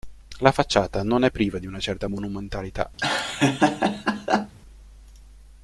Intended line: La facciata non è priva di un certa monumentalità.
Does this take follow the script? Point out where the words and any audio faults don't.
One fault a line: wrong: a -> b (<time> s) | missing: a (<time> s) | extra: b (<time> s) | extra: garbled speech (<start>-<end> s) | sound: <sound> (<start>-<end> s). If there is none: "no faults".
wrong: un -> una (1.7 s)
sound: laugh (3.0-4.5 s)